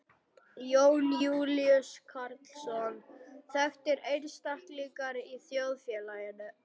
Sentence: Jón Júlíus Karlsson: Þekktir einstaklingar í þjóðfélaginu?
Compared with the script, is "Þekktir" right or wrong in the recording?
right